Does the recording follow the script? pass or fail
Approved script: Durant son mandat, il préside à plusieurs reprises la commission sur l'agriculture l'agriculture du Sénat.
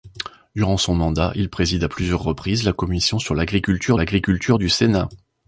pass